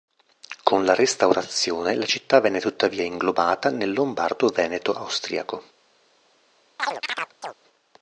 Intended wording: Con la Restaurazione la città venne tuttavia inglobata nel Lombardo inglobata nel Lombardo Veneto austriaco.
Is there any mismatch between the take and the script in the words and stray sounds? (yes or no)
yes